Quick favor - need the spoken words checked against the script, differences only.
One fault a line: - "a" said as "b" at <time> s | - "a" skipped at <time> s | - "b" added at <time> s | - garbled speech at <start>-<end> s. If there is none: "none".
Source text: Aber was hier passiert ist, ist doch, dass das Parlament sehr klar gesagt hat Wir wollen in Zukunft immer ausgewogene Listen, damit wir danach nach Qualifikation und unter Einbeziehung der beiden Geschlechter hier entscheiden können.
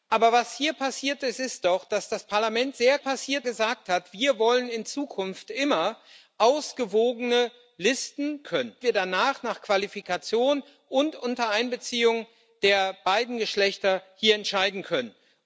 - "klar" said as "passiert" at 3.0 s
- "damit" said as "können" at 8.4 s